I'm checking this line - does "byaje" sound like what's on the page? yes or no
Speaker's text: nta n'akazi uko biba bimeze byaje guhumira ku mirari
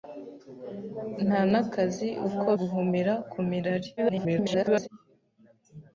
no